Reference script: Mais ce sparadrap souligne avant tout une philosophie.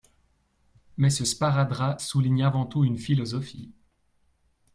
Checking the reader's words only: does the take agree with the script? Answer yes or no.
yes